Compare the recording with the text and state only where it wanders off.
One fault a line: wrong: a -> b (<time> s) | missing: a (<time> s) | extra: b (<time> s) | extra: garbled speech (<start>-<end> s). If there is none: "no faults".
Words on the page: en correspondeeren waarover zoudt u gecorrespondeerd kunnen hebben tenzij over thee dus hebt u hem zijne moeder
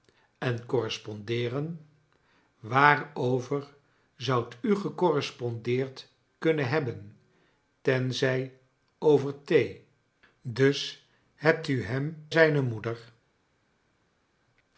no faults